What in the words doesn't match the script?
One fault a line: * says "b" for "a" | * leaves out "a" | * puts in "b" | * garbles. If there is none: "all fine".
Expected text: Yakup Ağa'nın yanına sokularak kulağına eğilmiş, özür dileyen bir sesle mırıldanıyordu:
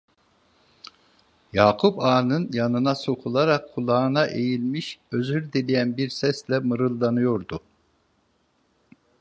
all fine